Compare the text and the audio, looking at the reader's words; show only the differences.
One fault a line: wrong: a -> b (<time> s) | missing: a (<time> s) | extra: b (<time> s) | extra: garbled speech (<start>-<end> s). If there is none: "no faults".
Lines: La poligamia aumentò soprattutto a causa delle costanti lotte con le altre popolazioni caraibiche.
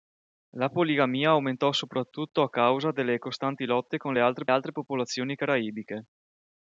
extra: altre (4.5 s)